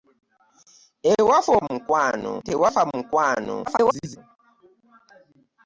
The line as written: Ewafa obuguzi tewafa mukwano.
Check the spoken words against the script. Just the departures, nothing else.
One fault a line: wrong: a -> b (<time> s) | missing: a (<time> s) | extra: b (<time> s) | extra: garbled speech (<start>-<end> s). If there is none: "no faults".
wrong: obuguzi -> mukwano (1.7 s)
extra: garbled speech (3.7-4.2 s)